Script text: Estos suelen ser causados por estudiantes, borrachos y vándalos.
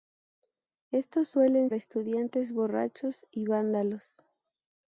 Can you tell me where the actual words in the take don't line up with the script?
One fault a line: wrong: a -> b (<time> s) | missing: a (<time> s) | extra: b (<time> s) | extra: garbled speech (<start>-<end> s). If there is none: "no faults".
missing: ser causados por (1.7 s)